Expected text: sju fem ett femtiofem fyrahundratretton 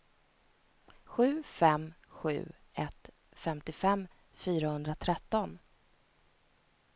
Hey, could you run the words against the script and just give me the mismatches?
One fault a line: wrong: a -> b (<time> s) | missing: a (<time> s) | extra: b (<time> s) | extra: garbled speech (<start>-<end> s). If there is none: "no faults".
extra: sju (2.1 s)